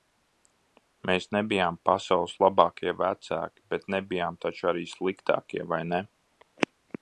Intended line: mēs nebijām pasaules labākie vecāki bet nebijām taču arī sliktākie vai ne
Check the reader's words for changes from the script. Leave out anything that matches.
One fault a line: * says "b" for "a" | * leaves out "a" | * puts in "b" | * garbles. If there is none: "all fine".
all fine